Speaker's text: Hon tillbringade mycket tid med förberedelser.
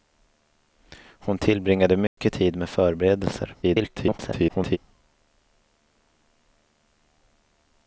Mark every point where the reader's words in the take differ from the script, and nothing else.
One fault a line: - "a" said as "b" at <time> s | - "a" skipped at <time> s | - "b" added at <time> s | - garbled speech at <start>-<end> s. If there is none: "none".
- garbled speech at 3.6-4.8 s